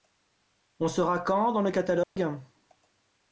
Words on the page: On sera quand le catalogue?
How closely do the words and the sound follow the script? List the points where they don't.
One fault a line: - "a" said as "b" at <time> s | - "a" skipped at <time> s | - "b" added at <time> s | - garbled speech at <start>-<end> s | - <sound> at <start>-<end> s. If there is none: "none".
- "dans" added at 1.5 s
- dropout at 2.0-2.2 s